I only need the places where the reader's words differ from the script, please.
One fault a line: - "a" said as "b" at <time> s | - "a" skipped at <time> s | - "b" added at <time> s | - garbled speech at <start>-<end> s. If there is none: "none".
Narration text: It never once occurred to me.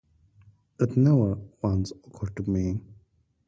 none